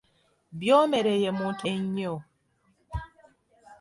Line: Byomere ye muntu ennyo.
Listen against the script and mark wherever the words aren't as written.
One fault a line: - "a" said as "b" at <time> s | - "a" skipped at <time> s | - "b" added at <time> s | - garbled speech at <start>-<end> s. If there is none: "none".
none